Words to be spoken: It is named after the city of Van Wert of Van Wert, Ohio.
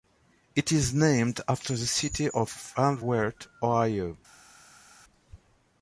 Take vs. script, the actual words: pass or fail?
fail